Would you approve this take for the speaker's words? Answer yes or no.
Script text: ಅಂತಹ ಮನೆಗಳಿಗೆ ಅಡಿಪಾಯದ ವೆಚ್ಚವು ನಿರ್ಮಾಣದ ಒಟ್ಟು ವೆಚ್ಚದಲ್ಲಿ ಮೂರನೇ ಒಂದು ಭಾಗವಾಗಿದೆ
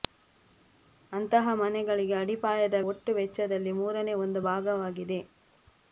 no